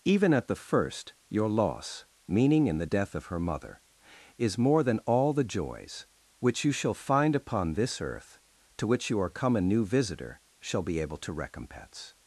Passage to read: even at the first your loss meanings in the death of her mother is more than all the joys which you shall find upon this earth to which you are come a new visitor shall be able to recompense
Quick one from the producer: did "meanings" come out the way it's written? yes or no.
no